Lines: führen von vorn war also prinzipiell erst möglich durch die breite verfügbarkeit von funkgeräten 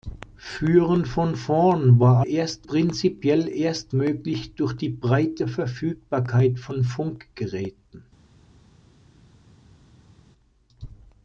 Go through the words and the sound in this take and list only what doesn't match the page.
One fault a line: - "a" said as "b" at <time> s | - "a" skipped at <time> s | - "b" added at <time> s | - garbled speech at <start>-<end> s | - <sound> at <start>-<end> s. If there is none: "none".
- "also" said as "erst" at 2.2 s